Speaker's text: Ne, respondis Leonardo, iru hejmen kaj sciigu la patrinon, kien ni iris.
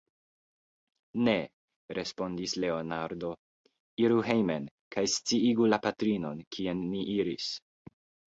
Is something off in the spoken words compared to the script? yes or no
no